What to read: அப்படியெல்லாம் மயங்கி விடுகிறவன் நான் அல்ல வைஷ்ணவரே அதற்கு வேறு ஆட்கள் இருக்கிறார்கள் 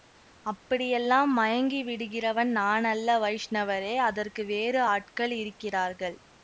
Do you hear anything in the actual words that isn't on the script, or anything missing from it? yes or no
no